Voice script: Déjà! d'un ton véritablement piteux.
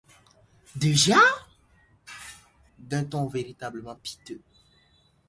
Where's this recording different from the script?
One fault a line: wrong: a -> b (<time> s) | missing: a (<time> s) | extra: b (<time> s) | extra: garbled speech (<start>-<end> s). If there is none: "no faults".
no faults